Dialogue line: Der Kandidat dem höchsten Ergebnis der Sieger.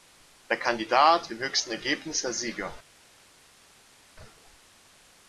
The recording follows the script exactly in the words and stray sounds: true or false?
true